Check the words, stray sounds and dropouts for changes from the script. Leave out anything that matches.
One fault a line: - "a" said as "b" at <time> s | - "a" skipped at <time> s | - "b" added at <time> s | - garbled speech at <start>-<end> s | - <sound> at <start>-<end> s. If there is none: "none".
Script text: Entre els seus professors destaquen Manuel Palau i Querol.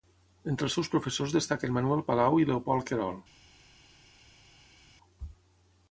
- "Leopold" added at 2.5 s